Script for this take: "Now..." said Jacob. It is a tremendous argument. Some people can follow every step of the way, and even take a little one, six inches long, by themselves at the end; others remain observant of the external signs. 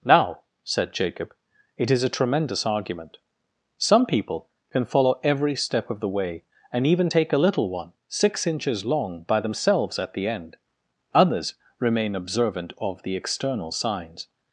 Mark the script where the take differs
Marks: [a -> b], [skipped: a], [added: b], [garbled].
"Now..." said Jacob. It is a tremendous argument. Some people can follow every step of the way, and even take a little one, six inches long, by themselves at the end; others remain observant of the external signs.